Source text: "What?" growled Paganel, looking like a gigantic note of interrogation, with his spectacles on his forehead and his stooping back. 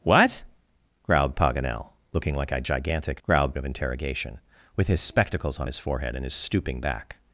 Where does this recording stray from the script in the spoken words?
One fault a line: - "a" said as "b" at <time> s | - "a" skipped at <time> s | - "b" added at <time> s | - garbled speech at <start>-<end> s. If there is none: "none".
- "note" said as "growled" at 3.2 s